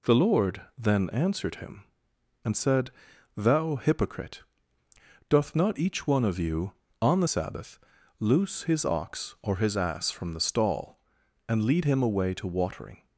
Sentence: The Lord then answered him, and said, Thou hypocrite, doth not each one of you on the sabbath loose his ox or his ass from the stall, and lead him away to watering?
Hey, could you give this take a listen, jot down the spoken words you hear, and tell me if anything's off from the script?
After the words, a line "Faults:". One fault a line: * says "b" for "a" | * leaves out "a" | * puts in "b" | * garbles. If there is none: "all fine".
The Lord then answered him, and said, Thou hypocrite, doth not each one of you on the sabbath loose his ox or his ass from the stall, and lead him away to watering?
Faults:
all fine